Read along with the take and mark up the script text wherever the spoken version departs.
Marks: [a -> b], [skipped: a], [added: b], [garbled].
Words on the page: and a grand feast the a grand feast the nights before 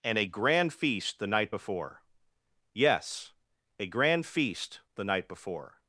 and a grand feast the [added: night before yes] a grand feast the [nights -> night] before